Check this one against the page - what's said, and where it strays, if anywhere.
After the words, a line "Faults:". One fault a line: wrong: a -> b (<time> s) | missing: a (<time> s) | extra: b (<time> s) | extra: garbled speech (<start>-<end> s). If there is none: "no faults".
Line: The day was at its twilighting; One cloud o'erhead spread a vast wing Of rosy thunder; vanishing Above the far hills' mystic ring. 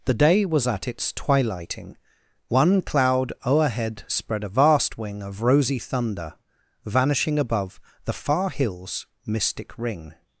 The day was at its twilighting; One cloud o'erhead spread a vast wing Of rosy thunder; vanishing Above the far hills' mystic ring.
Faults:
no faults